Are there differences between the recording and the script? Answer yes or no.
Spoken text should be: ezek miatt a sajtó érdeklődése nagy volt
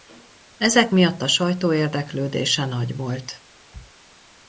no